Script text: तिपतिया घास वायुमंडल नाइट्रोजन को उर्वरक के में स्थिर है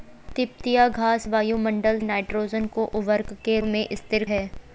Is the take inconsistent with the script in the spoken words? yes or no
no